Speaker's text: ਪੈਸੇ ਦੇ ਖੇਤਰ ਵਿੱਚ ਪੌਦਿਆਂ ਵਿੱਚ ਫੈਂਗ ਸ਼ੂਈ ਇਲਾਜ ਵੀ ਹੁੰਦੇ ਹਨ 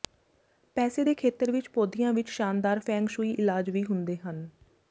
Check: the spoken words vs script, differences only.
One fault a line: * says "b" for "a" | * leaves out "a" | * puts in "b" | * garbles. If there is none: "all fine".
* puts in "ਸ਼ਾਨਦਾਰ"